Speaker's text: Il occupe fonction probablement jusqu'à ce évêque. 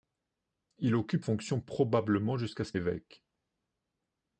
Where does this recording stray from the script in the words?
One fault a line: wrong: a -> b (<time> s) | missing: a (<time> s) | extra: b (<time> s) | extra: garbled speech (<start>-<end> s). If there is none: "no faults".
no faults